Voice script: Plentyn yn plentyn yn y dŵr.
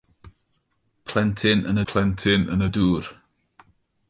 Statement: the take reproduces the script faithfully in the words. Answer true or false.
true